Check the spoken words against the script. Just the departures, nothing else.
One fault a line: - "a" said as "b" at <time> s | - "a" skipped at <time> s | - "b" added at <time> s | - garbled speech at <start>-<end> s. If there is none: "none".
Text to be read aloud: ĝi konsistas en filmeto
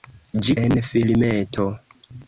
- "konsistas" skipped at 0.6 s